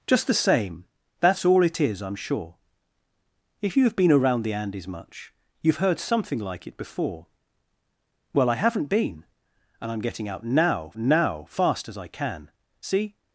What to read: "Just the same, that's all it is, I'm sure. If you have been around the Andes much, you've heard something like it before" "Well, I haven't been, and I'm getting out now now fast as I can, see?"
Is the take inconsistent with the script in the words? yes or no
no